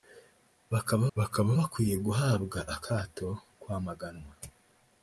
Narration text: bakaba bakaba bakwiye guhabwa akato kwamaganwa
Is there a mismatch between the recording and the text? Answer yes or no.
no